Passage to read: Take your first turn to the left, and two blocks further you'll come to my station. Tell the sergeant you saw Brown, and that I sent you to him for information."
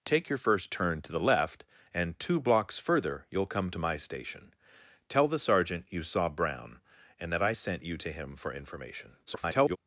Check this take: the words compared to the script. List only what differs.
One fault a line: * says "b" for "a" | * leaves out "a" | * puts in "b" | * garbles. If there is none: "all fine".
* garbles